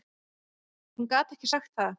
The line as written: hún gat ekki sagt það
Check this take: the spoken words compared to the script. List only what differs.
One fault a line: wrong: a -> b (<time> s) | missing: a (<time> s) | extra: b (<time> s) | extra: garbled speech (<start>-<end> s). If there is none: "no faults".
no faults